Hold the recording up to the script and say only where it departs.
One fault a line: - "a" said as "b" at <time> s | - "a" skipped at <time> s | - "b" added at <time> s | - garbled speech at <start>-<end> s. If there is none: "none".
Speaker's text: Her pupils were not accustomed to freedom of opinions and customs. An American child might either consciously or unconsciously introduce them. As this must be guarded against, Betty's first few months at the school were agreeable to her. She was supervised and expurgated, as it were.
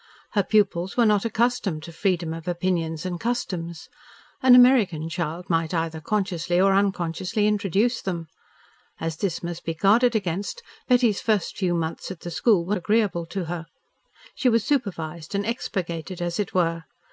none